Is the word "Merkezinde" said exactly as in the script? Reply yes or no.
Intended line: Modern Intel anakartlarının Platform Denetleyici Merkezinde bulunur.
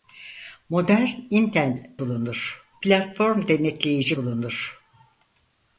no